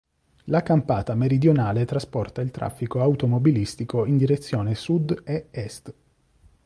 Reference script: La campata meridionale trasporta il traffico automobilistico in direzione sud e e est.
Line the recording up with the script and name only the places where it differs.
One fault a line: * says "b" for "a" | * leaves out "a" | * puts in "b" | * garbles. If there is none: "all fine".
* leaves out "e"